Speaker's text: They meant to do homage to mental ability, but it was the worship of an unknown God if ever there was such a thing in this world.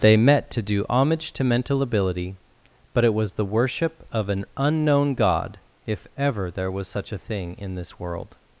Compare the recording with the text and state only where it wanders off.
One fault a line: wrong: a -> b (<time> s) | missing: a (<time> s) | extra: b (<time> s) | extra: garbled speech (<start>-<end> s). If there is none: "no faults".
wrong: meant -> met (0.2 s)